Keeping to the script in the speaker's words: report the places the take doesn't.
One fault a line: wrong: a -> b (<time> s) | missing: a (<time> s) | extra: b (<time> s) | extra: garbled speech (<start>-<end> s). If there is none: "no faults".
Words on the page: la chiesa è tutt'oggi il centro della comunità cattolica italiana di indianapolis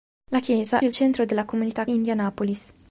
missing: è tutt'oggi (0.8 s)
missing: cattolica italiana di (1.8 s)